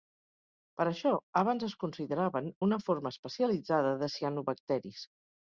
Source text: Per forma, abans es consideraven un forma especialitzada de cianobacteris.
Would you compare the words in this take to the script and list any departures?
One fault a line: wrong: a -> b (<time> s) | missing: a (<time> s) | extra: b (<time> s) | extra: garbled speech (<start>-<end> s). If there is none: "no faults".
wrong: forma -> això (0.9 s)
wrong: un -> una (2.7 s)